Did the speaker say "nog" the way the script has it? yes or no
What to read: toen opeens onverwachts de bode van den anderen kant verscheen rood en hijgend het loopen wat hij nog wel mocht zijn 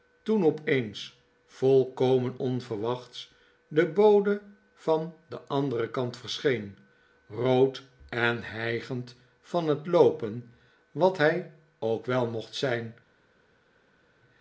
no